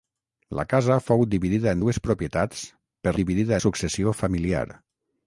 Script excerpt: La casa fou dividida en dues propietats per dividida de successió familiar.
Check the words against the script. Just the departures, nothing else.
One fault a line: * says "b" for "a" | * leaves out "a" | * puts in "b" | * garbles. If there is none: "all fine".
all fine